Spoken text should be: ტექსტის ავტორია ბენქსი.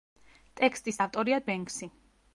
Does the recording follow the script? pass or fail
pass